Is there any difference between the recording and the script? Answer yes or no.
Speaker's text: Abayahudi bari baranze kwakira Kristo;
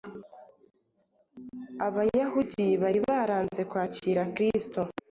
no